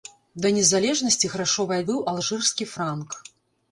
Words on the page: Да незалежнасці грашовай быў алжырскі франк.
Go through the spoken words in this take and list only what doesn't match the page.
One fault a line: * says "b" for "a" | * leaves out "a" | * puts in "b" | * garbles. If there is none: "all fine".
all fine